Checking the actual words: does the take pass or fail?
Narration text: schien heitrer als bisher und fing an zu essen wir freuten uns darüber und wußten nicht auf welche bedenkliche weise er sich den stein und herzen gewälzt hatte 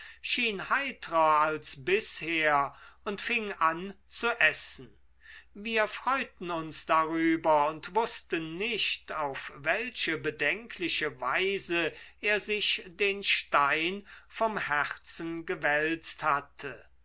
fail